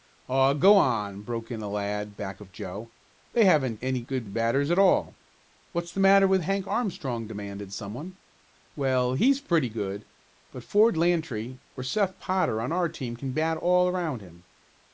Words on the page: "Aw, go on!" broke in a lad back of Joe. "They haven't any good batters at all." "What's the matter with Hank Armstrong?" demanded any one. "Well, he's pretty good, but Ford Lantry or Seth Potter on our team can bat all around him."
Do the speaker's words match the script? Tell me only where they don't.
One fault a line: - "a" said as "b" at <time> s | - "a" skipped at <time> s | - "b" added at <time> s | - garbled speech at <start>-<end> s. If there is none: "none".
- "any" said as "some" at 7.7 s